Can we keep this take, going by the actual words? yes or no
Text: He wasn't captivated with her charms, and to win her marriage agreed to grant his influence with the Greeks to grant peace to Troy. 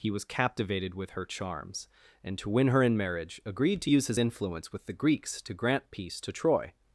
no